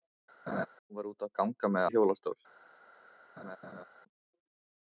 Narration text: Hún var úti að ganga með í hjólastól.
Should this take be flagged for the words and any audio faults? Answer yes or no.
yes